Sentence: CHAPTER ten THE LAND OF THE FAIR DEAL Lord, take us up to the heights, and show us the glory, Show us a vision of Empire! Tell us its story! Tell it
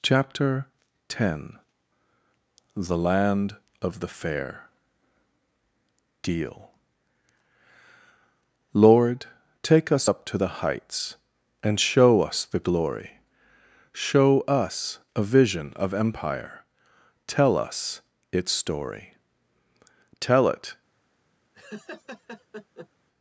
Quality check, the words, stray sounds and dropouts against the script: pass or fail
fail